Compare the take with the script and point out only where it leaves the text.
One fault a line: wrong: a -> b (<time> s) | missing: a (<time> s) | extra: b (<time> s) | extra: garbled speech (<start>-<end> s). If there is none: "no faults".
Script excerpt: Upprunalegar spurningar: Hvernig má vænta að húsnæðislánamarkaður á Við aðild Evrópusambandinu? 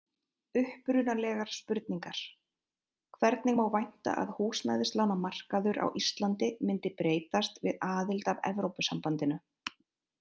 extra: Íslandi myndi breytast (6.0 s)
extra: að (8.3 s)